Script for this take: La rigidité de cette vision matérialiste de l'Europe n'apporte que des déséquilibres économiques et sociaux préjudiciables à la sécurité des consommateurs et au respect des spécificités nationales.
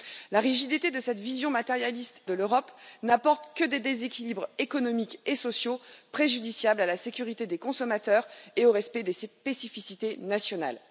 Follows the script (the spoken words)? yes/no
yes